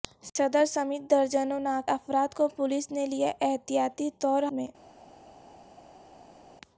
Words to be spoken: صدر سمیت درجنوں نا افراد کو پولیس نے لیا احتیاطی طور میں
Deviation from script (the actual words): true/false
false